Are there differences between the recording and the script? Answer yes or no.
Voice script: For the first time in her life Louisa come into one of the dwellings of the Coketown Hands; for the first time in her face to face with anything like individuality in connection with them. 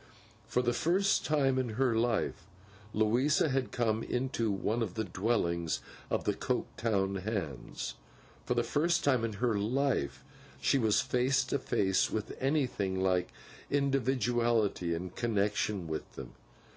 yes